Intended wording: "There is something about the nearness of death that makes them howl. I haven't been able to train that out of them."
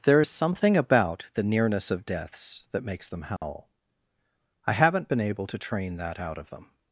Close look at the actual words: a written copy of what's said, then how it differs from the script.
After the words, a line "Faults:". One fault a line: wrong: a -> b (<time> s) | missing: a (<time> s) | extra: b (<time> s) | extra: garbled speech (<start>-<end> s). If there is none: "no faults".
"There is something about the nearness of deaths that makes them howl. I haven't been able to train that out of them."
Faults:
wrong: death -> deaths (2.0 s)